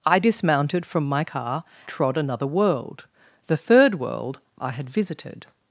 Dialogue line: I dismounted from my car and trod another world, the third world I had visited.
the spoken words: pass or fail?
fail